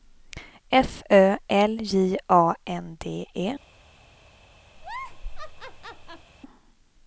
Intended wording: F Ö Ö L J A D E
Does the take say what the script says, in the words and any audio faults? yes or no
no